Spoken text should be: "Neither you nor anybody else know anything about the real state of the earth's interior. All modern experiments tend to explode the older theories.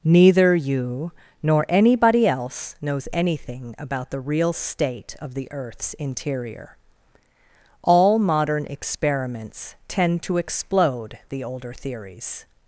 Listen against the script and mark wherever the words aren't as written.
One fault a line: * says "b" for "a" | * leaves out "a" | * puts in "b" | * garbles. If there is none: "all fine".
* says "knows" for "know"